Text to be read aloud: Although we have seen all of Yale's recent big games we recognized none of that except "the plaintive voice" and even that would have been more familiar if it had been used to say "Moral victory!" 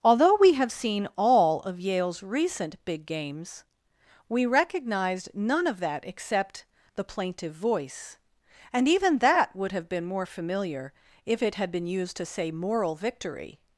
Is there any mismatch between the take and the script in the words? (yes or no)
no